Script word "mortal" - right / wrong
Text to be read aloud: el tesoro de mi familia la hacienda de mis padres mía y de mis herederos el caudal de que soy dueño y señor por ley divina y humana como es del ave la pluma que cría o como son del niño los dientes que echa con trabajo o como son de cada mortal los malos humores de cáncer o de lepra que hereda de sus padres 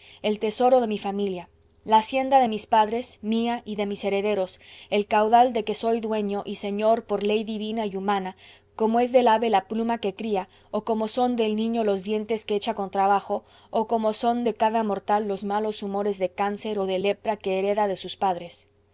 right